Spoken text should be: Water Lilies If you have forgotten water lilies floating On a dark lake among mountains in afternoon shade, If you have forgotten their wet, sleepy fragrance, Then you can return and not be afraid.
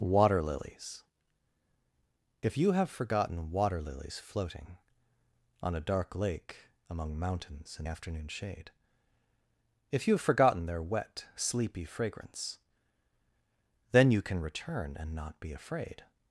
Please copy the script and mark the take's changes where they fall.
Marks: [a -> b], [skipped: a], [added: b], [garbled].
Water Lilies If you have forgotten water lilies floating On a dark lake among mountains in afternoon shade, If you have forgotten their wet, sleepy fragrance, Then you can return and not be afraid.